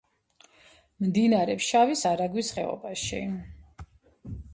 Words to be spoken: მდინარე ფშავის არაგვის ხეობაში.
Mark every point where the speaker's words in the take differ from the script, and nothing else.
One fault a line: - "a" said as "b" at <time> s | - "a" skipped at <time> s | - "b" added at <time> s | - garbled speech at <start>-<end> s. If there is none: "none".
none